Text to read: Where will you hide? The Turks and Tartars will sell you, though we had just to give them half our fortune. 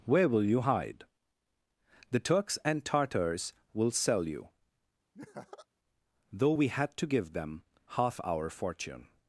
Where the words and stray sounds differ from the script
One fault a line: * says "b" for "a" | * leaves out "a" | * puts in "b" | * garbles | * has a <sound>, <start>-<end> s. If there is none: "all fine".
* has a laugh, 5.1-5.7 s
* leaves out "just"